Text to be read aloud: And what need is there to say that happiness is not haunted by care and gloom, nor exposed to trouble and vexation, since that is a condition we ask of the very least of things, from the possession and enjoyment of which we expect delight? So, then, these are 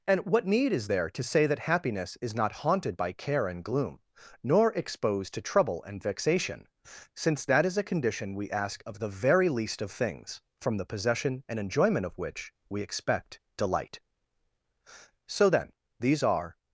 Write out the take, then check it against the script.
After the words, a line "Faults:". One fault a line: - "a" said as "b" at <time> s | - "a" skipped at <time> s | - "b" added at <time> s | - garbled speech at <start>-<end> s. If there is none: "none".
And what need is there to say that happiness is not haunted by care and gloom, nor exposed to trouble and vexation, since that is a condition we ask of the very least of things, from the possession and enjoyment of which we expect delight? So, then, these are
Faults:
none